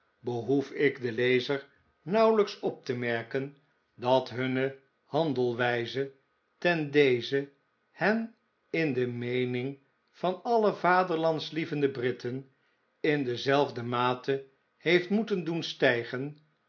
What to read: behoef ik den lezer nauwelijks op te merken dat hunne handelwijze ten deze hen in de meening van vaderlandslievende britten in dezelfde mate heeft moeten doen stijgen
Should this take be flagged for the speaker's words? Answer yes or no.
yes